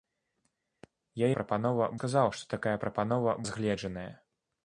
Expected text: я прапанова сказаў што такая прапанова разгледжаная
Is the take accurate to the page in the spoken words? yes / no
yes